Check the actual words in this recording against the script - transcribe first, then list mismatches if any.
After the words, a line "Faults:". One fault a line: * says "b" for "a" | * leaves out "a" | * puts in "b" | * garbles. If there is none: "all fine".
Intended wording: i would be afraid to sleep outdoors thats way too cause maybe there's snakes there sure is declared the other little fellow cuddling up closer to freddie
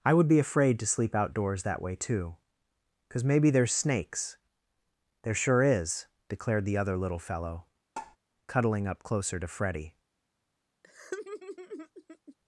i would be afraid to sleep outdoors that way too cause maybe there's snakes there sure is declared the other little fellow cuddling up closer to freddie
Faults:
* says "that" for "thats"